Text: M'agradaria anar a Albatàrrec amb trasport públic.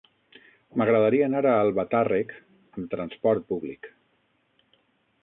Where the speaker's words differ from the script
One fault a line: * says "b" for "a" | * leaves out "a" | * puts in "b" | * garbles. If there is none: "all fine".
all fine